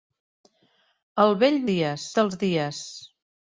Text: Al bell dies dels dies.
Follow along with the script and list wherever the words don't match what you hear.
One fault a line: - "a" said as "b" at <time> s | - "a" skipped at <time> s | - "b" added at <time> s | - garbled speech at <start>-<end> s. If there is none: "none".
none